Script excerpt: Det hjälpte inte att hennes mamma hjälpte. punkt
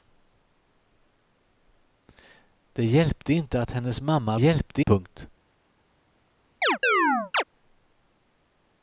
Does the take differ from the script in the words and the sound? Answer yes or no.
yes